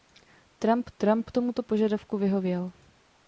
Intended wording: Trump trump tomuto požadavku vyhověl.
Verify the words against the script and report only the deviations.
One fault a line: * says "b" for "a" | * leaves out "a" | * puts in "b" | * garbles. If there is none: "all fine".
all fine